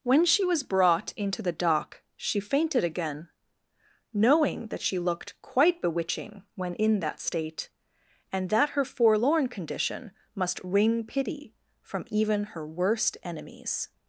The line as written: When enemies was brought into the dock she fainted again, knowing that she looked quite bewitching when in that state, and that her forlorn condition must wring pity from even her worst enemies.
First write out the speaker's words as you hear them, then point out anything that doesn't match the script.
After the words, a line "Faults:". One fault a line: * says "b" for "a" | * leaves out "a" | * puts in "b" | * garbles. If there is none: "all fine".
When she was brought into the dock she fainted again, knowing that she looked quite bewitching when in that state, and that her forlorn condition must wring pity from even her worst enemies.
Faults:
* says "she" for "enemies"